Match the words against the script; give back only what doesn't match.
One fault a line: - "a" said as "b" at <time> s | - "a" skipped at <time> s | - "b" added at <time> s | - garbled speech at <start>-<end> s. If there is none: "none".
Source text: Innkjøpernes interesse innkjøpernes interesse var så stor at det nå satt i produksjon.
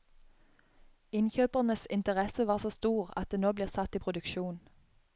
- "innkjøpernes interesse" skipped at 2.5 s
- "blir" added at 3.5 s